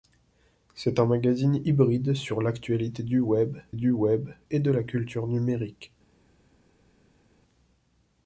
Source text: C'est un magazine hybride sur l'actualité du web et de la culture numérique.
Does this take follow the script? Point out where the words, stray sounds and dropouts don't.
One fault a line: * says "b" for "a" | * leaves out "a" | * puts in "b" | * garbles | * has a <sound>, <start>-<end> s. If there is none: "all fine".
* puts in "du web"